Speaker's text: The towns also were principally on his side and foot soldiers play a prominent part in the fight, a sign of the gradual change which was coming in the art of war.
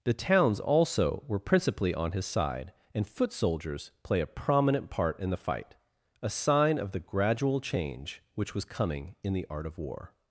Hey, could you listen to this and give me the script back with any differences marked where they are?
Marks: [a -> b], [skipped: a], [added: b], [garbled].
The towns also were principally on his side and foot soldiers play a prominent part in the fight, a sign of the gradual change which was coming in the art of war.